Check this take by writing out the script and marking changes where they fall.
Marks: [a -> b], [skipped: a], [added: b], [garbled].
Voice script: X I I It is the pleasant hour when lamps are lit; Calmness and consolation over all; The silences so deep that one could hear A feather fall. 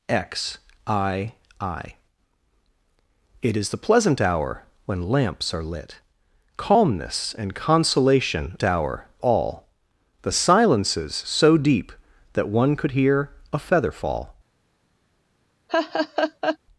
X I I It is the pleasant hour when lamps are lit; Calmness and consolation [over -> hour] all; The silences so deep that one could hear A feather fall.